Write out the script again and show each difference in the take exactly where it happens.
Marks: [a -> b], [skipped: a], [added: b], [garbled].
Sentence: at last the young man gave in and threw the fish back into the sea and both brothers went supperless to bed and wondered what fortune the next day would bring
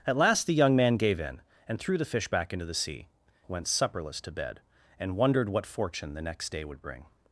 at last the young man gave in and threw the fish back into the sea [skipped: and both brothers] went supperless to bed and wondered what fortune the next day would bring